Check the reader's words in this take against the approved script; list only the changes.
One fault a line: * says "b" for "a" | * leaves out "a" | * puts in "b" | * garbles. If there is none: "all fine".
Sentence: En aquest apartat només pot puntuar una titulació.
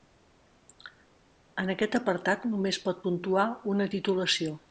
all fine